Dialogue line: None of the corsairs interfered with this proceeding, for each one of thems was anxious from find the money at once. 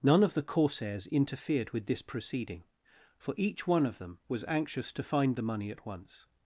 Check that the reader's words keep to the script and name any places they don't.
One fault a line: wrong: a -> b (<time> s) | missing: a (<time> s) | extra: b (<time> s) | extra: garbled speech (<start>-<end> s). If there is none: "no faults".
wrong: thems -> them (4.0 s)
wrong: from -> to (4.9 s)